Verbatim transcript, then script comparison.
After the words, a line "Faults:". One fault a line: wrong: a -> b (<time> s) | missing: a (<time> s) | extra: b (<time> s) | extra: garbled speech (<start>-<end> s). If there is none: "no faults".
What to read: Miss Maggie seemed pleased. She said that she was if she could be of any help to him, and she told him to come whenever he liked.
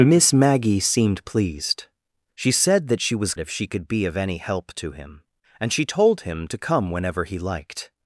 Miss Maggie seemed pleased. She said that she was if she could be of any help to him, and she told him to come whenever he liked.
Faults:
no faults